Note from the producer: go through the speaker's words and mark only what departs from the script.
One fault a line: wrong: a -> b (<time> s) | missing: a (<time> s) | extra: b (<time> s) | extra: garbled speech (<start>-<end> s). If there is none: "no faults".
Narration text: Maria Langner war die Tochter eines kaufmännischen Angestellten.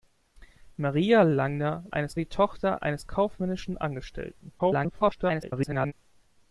wrong: war -> eines (1.9 s)
extra: garbled speech (4.6-5.9 s)